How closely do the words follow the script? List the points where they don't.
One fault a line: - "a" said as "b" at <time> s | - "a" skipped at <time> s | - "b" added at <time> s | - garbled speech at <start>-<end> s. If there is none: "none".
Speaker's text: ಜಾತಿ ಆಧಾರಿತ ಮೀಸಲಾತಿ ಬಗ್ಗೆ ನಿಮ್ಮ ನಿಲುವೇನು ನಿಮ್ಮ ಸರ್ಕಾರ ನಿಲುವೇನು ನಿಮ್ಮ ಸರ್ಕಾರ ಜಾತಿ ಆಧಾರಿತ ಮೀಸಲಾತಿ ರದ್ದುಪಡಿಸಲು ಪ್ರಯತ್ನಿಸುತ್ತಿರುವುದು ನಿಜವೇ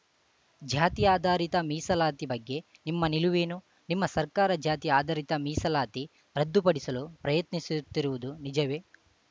- "ನಿಲುವೇನು ನಿಮ್ಮ ಸರ್ಕಾರ" skipped at 4.5 s